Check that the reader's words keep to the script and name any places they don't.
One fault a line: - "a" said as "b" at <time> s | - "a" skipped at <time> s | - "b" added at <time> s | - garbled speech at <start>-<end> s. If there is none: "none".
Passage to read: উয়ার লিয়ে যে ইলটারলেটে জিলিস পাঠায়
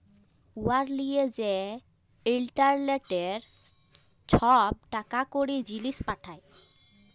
- "ছব টাকা কড়ি" added at 4.3 s